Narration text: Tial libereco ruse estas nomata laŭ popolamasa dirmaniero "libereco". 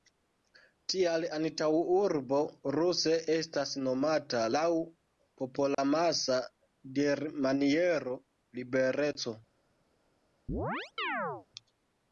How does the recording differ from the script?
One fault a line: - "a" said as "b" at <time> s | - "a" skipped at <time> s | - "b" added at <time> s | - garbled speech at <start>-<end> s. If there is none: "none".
- "libereco" said as "antaŭurbo" at 1.4 s